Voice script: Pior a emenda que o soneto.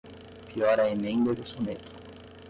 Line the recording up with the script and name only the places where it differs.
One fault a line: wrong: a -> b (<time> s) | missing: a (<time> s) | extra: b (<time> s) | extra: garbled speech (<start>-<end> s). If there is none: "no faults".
missing: que (1.3 s)